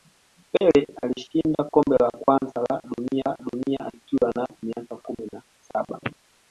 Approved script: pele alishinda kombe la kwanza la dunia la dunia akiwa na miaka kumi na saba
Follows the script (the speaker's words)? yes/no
yes